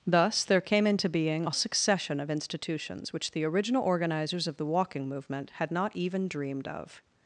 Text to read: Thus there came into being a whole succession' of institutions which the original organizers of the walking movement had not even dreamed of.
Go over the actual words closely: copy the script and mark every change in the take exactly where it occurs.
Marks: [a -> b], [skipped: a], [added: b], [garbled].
Thus there came into being a [skipped: whole] succession' of institutions which the original organizers of the walking movement had not even dreamed of.